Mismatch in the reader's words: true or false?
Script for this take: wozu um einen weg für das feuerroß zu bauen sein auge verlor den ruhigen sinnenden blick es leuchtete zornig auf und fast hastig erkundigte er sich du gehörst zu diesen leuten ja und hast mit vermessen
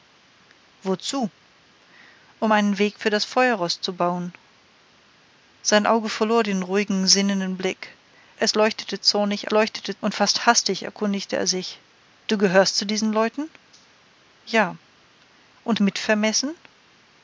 true